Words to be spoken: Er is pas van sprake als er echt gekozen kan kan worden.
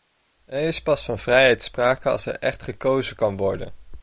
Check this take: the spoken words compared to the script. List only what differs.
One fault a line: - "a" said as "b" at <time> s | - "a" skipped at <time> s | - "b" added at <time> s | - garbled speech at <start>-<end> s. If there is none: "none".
- "vrijheid" added at 1.2 s
- "kan" skipped at 3.4 s